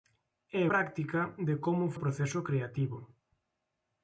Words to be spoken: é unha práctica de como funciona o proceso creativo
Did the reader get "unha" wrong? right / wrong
wrong